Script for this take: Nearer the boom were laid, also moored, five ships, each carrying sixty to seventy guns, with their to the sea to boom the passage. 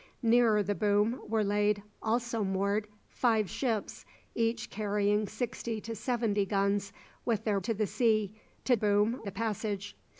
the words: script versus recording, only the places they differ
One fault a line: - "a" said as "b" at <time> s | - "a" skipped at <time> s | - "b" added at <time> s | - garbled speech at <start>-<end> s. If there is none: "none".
none